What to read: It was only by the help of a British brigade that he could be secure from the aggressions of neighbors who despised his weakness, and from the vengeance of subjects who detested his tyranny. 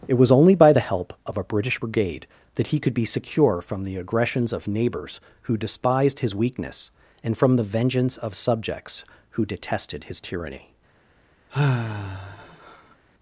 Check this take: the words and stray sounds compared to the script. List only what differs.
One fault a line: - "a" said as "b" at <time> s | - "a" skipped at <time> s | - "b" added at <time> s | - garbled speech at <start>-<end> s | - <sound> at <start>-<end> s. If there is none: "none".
- sigh at 11.5-13.0 s